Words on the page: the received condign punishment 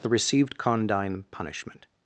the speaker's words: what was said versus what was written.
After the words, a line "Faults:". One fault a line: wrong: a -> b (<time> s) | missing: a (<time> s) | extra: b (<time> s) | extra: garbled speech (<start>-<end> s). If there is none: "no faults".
the received condign punishment
Faults:
no faults